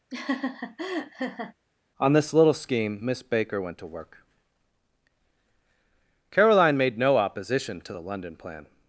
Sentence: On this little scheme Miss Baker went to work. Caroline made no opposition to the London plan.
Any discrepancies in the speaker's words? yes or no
no